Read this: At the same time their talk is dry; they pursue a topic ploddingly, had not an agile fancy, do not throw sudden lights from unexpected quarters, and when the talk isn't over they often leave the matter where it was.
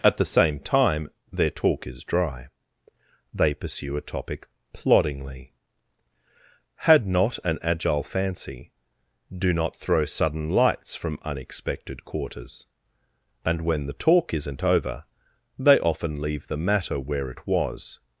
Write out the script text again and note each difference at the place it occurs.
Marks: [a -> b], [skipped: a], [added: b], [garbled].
At the same time their talk is dry; they pursue a topic ploddingly, had not an agile fancy, do not throw sudden lights from unexpected quarters, and when the talk isn't over they often leave the matter where it was.